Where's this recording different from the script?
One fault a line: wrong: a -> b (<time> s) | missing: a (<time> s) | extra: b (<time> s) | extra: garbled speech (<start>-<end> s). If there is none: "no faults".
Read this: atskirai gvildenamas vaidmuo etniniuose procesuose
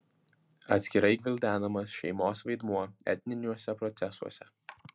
extra: šeimos (2.0 s)